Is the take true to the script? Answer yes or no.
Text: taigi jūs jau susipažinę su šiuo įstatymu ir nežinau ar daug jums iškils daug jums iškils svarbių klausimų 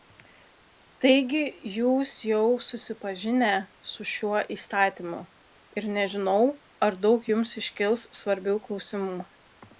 no